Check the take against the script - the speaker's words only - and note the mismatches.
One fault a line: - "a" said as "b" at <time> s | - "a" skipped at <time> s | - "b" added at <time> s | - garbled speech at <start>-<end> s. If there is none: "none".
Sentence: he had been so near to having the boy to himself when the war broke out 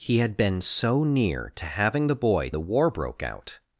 - "to himself when" skipped at 2.5 s